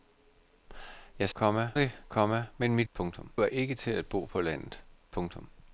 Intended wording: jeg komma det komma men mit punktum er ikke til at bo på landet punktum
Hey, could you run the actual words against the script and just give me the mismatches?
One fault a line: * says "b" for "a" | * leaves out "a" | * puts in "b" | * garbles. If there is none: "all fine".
all fine